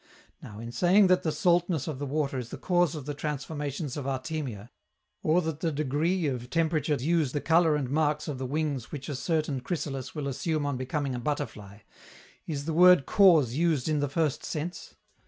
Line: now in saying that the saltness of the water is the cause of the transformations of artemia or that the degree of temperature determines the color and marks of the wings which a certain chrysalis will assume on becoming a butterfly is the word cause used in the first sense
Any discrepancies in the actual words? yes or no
yes